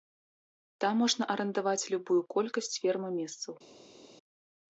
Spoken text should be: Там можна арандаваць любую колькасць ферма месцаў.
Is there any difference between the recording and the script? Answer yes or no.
no